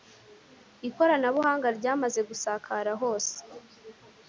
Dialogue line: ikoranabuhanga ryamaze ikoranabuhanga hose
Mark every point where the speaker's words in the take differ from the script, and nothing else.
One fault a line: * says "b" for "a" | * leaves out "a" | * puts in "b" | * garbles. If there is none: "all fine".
* says "gusakara" for "ikoranabuhanga"